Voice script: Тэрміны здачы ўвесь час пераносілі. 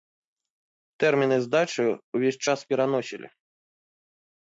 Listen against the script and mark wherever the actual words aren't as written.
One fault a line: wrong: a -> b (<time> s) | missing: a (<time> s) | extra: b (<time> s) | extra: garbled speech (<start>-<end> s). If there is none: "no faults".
no faults